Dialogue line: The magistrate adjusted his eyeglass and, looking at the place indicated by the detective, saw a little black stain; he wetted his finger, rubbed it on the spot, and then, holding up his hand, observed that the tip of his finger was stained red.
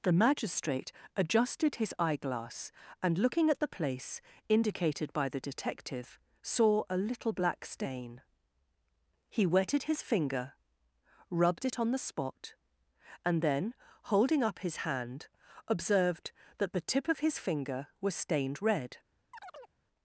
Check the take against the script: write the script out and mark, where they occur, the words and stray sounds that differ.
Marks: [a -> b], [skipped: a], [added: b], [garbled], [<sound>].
The magistrate adjusted his eyeglass and, looking at the place indicated by the detective, saw a little black stain; he wetted his finger, rubbed it on the spot, and then, holding up his hand, observed that the tip of his finger was stained red. [chirp]